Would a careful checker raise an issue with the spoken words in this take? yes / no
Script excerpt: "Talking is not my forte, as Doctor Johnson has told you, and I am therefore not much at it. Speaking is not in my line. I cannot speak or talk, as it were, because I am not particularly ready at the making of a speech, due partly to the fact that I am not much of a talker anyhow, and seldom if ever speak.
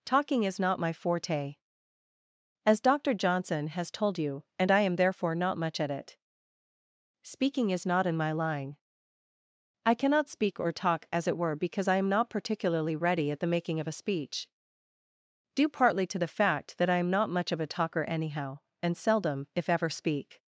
no